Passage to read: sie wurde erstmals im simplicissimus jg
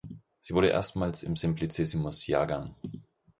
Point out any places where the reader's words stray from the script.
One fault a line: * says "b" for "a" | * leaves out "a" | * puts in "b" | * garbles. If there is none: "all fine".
all fine